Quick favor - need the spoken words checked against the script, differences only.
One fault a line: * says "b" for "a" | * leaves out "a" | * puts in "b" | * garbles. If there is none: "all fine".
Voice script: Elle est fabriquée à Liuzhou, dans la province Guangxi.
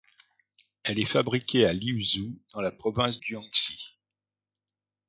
all fine